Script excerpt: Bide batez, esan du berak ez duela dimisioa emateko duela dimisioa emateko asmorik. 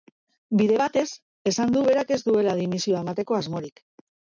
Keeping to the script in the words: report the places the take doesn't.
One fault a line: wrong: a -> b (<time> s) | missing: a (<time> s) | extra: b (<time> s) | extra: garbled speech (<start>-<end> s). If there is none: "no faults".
missing: duela dimisioa emateko (3.4 s)